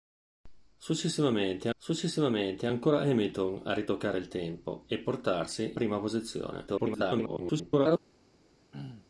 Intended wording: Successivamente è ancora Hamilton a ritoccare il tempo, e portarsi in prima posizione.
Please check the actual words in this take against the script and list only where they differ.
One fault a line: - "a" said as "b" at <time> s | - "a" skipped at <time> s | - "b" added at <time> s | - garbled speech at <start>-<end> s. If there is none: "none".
- "successivamente" added at 1.8 s
- "in" skipped at 5.7 s
- garbled speech at 6.7-8.0 s